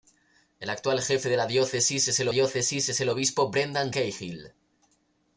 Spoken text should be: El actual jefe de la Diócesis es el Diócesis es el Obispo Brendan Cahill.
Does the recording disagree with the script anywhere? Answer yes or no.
no